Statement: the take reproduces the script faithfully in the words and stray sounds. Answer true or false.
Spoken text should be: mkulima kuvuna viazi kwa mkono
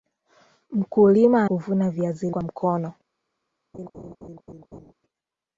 false